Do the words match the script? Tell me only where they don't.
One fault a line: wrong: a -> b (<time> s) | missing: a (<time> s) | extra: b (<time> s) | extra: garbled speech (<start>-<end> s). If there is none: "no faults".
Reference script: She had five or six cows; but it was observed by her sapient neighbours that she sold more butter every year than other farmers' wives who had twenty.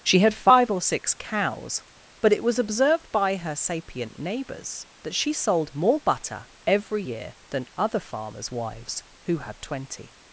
no faults